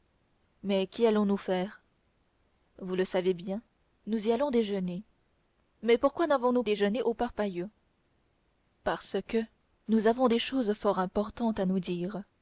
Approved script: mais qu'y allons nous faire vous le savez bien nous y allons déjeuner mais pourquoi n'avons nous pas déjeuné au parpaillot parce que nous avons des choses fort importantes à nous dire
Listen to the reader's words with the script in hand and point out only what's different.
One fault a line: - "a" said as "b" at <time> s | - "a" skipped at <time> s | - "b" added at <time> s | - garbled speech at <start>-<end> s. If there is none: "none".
- "pas" skipped at 6.6 s